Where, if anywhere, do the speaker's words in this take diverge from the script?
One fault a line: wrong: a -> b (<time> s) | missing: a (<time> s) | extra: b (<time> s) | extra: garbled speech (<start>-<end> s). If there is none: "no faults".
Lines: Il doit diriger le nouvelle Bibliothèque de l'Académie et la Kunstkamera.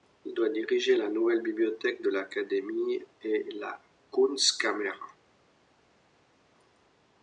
wrong: le -> la (1.0 s)